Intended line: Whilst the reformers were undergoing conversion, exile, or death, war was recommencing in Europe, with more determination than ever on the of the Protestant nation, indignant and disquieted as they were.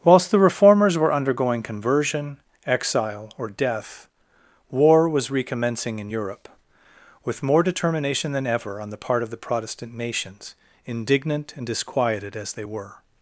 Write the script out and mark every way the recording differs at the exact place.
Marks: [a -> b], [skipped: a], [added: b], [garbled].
Whilst the reformers were undergoing conversion, exile, or death, war was recommencing in Europe, with more determination than ever on the [added: part] of the Protestant [nation, -> nations] indignant and disquieted as they were.